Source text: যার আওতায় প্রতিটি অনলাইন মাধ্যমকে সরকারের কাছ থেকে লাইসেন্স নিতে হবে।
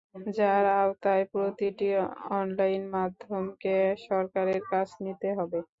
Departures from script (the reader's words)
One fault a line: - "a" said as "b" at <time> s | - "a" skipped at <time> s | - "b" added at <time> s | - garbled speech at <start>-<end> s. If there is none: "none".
- "থেকে লাইসেন্স" skipped at 4.9 s